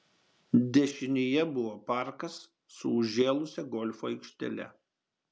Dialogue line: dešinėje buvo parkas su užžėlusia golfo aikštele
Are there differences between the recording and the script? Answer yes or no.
no